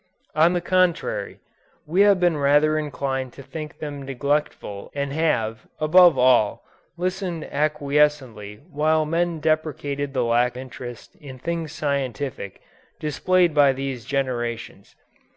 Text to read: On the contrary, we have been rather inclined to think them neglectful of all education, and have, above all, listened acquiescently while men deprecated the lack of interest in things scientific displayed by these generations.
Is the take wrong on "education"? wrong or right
wrong